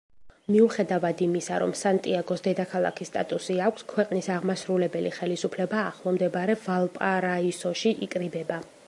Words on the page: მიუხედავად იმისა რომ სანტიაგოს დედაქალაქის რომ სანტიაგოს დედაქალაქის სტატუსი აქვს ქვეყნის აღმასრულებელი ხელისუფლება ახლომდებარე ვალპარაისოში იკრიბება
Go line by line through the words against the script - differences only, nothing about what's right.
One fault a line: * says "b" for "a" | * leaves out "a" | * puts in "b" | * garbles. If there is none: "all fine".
* leaves out "რომ სანტიაგოს დედაქალაქის"